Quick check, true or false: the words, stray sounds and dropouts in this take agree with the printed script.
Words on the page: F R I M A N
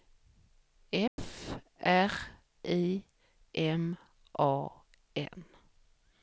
false